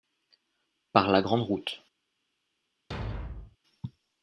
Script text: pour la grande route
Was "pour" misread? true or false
true